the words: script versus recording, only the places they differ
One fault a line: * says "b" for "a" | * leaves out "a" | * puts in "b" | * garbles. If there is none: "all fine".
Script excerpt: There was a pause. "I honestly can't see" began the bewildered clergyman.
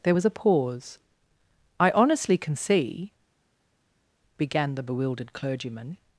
* says "can" for "can't"